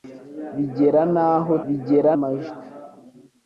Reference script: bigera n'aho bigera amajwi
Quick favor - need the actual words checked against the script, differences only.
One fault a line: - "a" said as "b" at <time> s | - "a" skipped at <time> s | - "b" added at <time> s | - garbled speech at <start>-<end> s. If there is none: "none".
none